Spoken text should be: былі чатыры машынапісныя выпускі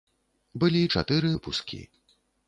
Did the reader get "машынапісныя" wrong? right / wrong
wrong